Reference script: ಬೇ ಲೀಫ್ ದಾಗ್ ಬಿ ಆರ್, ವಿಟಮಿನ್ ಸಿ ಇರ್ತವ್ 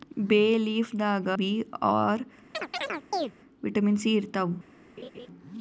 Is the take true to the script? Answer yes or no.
yes